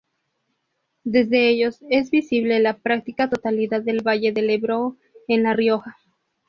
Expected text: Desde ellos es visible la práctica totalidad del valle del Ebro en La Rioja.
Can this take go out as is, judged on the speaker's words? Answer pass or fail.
pass